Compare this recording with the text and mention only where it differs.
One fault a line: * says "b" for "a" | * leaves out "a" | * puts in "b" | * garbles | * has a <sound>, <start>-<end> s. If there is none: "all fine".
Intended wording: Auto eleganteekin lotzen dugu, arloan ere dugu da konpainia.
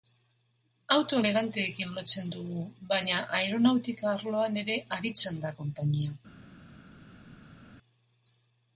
* puts in "baina aeronautika"
* says "aritzen" for "dugu"